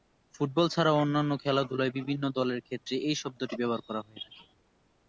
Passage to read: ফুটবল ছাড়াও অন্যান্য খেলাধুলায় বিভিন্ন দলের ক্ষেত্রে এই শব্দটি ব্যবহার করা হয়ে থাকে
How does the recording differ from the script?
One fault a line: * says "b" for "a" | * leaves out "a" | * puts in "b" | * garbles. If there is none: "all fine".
all fine